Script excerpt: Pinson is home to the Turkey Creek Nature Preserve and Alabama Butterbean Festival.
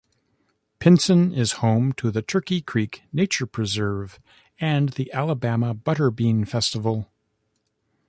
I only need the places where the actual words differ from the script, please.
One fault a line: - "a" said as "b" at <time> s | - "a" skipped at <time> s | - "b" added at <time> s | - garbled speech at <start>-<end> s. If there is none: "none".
- "the" added at 4.9 s